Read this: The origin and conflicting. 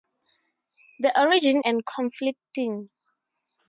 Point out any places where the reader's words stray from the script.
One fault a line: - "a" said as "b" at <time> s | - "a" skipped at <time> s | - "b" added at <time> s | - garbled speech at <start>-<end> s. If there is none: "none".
none